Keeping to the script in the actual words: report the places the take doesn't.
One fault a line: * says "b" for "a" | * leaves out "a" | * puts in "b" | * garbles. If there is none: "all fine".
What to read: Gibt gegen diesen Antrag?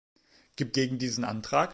all fine